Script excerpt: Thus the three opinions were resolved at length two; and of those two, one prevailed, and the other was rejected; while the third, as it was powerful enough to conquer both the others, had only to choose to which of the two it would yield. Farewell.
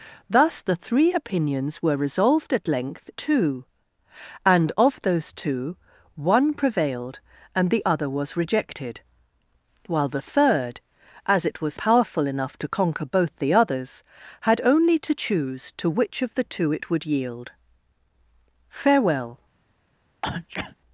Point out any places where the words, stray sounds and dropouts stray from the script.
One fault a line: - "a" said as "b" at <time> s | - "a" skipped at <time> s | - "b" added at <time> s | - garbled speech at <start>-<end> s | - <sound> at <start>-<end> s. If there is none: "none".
- sneeze at 20.2-20.8 s